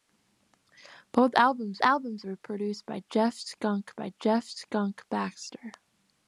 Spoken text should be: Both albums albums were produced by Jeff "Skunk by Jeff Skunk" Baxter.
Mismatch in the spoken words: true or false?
false